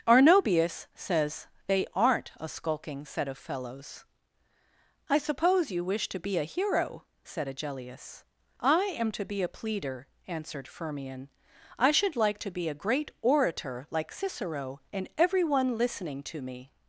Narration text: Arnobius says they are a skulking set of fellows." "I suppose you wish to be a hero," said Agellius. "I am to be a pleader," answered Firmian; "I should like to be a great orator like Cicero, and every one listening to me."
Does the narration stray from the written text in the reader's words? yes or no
yes